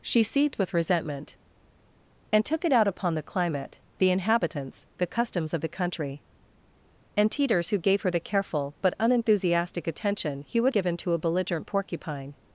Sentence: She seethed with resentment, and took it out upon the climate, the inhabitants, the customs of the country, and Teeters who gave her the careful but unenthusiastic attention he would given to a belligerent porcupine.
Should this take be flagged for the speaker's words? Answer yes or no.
no